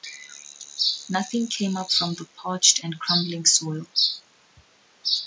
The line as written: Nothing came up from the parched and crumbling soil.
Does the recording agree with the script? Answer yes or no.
yes